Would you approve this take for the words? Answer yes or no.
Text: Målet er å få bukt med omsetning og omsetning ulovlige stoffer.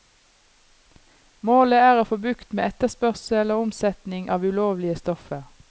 no